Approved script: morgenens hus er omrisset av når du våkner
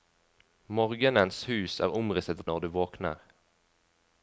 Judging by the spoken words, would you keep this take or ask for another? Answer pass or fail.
pass